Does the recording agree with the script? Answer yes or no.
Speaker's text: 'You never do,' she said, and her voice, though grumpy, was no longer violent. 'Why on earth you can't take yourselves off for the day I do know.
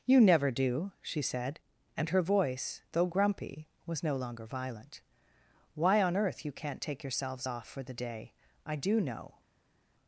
yes